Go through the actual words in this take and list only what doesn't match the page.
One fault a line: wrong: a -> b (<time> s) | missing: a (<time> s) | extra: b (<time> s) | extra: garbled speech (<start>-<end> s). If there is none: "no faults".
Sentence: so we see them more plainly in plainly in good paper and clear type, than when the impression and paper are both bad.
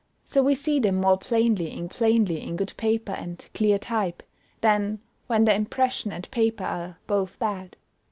no faults